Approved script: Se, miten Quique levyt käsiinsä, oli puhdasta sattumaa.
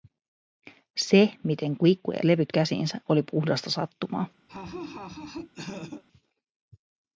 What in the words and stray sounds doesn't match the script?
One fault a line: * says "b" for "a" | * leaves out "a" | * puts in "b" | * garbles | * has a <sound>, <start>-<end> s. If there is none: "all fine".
* has a laugh, 4.5-6.0 s